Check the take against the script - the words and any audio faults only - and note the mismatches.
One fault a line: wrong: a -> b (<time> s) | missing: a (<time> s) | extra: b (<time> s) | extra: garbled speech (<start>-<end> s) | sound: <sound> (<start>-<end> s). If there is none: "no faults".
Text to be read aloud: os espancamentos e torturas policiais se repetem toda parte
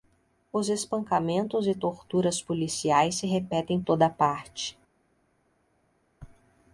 no faults